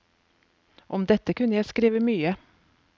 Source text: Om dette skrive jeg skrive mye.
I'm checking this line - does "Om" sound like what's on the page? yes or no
yes